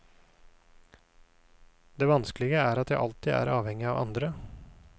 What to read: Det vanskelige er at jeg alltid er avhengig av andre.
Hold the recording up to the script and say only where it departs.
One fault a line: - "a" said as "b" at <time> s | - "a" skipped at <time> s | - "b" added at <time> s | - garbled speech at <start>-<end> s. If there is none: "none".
none